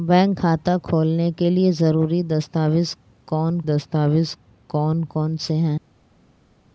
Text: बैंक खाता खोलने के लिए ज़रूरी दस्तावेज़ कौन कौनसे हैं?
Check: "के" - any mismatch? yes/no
no